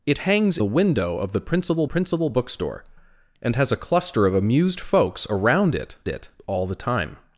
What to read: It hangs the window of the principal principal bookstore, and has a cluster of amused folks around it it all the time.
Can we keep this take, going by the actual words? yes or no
yes